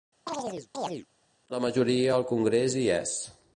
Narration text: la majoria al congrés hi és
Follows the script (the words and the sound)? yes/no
no